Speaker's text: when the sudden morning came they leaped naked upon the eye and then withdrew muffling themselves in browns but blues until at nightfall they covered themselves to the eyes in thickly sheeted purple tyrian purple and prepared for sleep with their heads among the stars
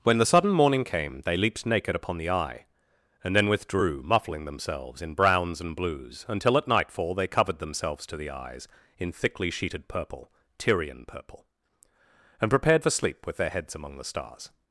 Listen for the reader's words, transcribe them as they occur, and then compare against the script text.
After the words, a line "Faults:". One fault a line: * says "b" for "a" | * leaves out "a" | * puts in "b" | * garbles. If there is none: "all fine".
when the sudden morning came they leaped naked upon the eye and then withdrew muffling themselves in browns and blues until at nightfall they covered themselves to the eyes in thickly sheeted purple tyrian purple and prepared for sleep with their heads among the stars
Faults:
* says "and" for "but"